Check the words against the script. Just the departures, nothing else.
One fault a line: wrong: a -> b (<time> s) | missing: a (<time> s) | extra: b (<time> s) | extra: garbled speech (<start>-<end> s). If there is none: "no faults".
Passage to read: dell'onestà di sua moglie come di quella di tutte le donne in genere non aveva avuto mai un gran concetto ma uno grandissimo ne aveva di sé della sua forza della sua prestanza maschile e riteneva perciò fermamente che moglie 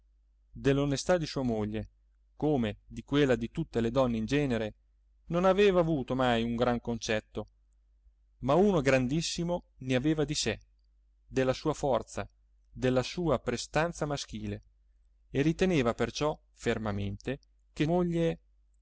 no faults